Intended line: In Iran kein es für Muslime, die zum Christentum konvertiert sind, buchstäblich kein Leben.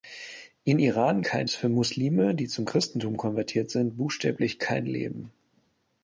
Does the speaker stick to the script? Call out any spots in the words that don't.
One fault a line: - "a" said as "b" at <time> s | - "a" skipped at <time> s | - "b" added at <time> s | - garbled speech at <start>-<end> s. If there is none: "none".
none